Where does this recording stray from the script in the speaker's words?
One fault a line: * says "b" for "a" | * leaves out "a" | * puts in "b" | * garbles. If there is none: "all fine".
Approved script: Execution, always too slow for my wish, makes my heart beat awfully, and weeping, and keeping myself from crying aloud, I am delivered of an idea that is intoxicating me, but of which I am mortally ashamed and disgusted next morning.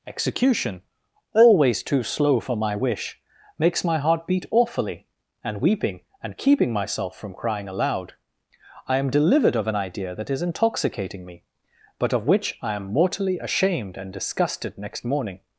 all fine